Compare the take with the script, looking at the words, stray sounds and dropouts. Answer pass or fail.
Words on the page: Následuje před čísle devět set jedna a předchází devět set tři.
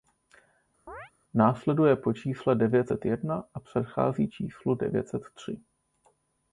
fail